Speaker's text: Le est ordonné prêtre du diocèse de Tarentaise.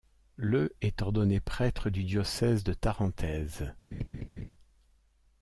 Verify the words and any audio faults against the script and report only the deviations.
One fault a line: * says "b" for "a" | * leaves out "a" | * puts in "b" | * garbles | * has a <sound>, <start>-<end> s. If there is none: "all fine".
* has a laugh, 3.9-4.5 s